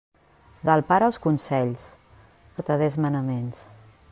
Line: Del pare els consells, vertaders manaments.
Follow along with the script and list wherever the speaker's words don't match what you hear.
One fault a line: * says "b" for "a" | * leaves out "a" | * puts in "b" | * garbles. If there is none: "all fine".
all fine